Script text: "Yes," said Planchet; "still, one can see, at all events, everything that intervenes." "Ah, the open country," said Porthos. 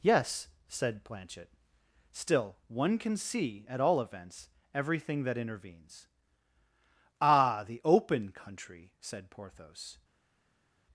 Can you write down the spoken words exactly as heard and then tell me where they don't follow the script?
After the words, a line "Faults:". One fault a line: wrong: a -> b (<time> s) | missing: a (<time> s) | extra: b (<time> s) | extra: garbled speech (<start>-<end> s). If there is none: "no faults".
"Yes," said Planchet; "still, one can see, at all events, everything that intervenes." "Ah, the open country," said Porthos.
Faults:
no faults